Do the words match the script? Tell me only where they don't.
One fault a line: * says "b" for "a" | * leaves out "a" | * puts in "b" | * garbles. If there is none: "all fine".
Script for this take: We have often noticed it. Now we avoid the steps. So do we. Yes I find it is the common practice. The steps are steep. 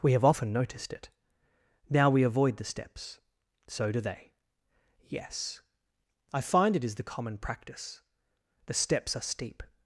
* says "they" for "we"